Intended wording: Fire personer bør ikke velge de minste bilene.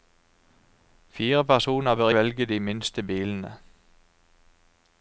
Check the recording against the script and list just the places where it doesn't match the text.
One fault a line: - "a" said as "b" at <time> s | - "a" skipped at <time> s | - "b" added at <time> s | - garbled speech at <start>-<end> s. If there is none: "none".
- "ikke" skipped at 2.1 s